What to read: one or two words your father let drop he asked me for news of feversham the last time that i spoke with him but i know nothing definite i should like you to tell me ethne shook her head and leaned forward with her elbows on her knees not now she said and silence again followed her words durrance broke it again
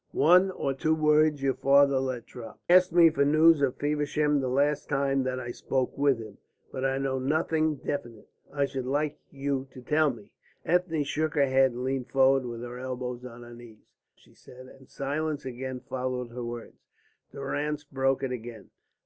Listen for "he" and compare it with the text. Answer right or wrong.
wrong